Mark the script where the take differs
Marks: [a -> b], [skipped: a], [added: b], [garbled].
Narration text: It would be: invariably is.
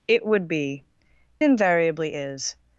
It would be: invariably is.